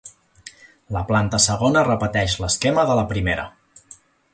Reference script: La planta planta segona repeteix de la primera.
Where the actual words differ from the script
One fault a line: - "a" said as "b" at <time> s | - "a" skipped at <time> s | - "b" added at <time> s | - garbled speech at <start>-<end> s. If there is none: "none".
- "planta" skipped at 1.4 s
- "l'esquema" added at 2.5 s